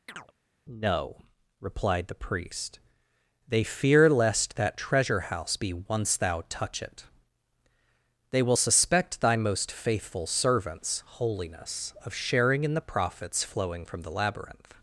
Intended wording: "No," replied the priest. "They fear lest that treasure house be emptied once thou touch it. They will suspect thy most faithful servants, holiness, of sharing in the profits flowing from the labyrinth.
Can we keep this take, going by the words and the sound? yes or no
no